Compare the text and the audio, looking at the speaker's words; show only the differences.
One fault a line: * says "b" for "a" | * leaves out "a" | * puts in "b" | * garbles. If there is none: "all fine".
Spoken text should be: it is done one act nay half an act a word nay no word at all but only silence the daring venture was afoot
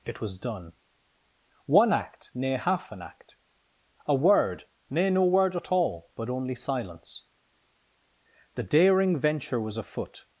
* says "was" for "is"